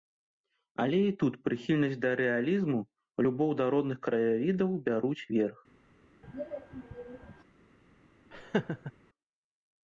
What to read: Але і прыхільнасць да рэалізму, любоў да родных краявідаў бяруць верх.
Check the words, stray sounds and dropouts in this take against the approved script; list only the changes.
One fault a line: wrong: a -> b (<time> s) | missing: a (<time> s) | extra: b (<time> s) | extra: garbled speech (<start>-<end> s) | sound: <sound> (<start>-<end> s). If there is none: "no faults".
extra: тут (1.2 s)
sound: throat clearing (6.2-7.4 s)
sound: laugh (8.3-8.9 s)